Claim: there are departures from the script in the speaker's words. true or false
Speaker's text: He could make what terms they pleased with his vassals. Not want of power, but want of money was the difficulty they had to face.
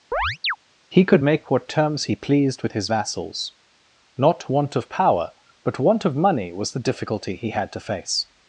true